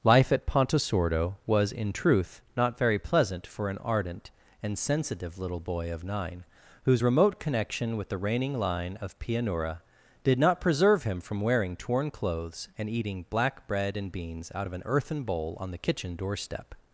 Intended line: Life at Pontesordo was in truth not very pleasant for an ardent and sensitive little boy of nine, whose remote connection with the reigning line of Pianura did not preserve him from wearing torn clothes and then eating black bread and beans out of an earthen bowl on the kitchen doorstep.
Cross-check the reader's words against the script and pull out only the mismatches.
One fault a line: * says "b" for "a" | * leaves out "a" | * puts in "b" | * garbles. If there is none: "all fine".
* leaves out "then"